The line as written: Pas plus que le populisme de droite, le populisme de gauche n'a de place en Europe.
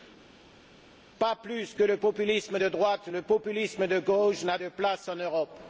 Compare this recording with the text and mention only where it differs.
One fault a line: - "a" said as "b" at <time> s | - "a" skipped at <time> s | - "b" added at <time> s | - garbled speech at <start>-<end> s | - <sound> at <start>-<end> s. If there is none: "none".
none